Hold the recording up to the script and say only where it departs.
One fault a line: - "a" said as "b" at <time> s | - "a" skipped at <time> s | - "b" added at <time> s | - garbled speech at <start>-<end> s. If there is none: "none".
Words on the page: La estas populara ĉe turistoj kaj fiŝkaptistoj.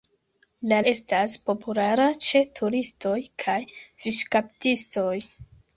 none